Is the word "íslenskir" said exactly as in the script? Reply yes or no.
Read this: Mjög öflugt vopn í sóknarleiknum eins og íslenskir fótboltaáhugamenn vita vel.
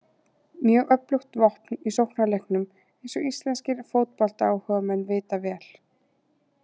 yes